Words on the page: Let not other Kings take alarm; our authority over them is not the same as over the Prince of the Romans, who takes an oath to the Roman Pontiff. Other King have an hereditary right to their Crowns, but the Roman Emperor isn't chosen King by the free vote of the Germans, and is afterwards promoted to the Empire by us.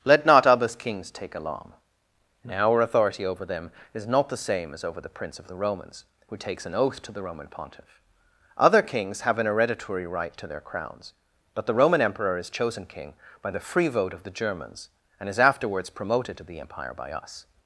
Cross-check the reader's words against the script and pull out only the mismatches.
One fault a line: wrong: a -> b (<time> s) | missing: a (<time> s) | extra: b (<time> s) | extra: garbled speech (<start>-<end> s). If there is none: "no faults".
wrong: King -> Kings (8.8 s)
wrong: isn't -> is (12.4 s)